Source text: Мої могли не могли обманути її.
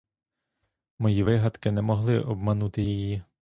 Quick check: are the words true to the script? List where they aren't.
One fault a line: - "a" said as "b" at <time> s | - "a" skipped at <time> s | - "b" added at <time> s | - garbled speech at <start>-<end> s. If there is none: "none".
- "могли" said as "вигадки" at 1.2 s